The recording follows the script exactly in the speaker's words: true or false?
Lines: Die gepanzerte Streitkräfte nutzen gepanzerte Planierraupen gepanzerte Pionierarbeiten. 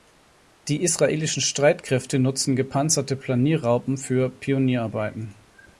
false